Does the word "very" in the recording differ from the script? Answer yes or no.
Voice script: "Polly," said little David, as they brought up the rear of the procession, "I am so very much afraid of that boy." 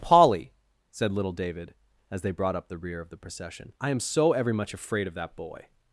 yes